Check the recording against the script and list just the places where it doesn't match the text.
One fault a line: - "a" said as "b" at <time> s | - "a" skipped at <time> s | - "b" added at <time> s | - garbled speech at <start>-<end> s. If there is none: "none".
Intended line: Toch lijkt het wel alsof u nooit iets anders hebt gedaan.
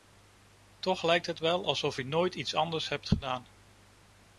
none